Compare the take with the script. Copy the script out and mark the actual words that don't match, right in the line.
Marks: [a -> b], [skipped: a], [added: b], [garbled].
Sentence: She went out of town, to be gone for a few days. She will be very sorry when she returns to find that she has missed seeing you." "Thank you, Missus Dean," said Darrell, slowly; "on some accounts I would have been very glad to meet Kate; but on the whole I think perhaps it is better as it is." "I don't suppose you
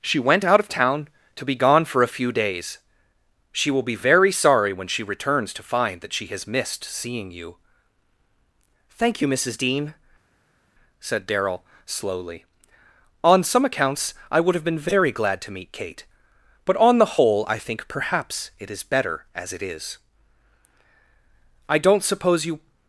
She went out of town, to be gone for a few days. She will be very sorry when she returns to find that she has missed seeing you." "Thank you, Missus Dean," said Darrell, slowly; "on some accounts I would have been very glad to meet Kate; but on the whole I think perhaps it is better as it is." "I don't suppose you